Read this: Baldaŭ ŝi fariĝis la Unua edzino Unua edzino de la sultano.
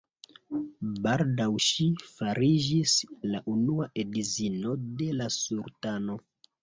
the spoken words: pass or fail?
fail